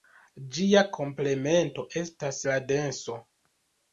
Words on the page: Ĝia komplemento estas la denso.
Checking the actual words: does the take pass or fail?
pass